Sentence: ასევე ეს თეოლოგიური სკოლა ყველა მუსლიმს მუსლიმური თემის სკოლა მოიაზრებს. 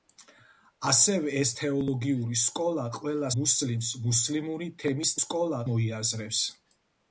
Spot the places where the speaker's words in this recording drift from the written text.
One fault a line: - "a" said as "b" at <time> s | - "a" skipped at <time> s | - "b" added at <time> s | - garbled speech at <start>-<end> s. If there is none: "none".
none